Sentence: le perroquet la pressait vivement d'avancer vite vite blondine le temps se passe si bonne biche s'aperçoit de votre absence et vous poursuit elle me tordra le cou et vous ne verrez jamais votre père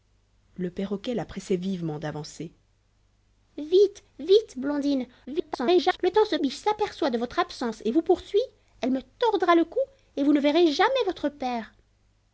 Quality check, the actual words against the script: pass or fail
fail